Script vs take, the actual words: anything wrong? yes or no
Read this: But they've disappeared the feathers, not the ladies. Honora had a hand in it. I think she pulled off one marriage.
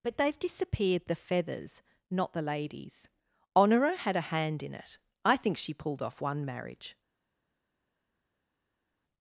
no